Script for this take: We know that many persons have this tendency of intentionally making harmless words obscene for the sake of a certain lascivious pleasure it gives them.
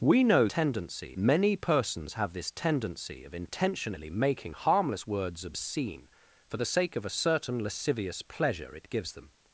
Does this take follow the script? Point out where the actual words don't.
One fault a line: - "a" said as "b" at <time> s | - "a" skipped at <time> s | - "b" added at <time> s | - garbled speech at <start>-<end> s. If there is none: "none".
- "that" said as "tendency" at 0.4 s